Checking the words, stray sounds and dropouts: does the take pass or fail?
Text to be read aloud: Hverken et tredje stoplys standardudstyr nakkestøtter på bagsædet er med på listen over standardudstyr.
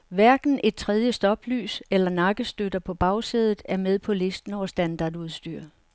fail